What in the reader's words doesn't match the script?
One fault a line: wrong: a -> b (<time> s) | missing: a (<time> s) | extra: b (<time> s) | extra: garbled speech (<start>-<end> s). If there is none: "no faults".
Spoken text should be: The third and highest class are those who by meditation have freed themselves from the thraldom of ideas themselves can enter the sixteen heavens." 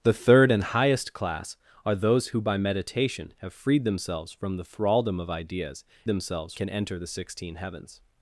no faults